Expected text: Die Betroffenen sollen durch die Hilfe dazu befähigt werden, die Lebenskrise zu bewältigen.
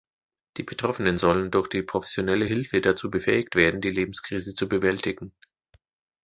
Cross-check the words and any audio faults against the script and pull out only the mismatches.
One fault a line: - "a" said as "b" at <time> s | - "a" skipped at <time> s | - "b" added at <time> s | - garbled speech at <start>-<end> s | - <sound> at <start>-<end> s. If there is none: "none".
- "professionelle" added at 1.8 s